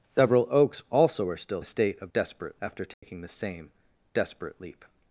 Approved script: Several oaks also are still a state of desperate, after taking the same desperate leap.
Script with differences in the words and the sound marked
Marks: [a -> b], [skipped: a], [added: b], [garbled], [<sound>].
Several oaks also are still a state of desperate, after taking [dropout] the same desperate leap.